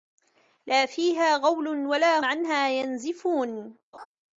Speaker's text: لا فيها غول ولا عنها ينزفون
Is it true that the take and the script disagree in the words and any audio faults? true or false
true